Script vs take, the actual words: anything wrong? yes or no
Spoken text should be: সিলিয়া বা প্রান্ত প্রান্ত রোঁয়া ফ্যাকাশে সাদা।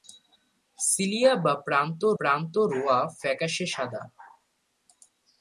no